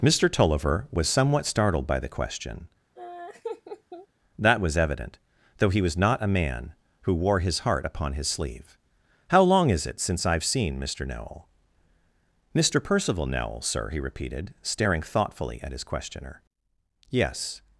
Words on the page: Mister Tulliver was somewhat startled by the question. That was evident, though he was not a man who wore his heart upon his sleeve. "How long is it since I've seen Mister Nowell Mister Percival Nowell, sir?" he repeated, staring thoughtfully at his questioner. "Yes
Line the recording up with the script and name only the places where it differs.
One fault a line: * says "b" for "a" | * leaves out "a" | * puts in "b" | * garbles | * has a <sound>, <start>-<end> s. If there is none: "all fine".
* has a laugh, 3.0-4.1 s